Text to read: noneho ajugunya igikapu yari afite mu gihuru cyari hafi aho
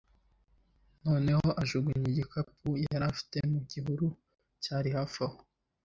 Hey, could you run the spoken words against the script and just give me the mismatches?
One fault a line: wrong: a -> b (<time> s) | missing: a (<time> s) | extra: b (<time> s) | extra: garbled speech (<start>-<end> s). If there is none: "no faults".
no faults